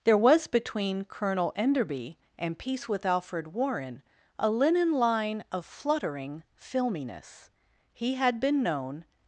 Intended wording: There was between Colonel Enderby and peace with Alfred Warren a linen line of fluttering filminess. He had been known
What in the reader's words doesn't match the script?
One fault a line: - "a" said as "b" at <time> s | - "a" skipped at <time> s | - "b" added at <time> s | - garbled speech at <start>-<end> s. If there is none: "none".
none